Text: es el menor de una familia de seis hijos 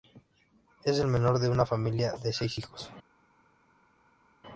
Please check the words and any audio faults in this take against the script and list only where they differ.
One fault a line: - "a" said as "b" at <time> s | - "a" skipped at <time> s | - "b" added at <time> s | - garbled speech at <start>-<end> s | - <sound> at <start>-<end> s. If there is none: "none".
none